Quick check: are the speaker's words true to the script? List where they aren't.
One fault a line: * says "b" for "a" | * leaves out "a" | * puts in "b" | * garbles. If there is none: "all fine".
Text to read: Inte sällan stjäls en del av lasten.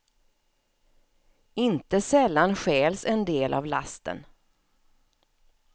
all fine